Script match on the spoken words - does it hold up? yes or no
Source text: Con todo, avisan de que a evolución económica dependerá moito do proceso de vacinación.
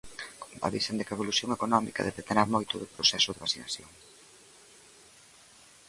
no